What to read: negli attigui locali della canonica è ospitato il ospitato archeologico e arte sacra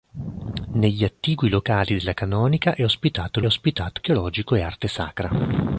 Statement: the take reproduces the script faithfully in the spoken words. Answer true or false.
true